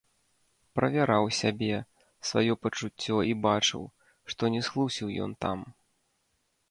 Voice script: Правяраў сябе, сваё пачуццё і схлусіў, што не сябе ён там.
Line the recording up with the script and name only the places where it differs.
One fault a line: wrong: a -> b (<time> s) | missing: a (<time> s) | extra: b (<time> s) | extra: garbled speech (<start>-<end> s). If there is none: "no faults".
wrong: схлусіў -> бачыў (3.5 s)
wrong: сябе -> схлусіў (4.7 s)